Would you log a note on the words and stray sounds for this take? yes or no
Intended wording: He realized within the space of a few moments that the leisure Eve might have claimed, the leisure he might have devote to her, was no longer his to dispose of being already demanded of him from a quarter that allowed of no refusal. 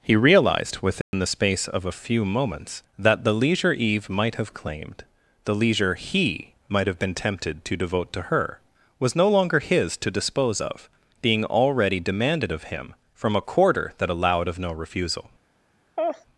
yes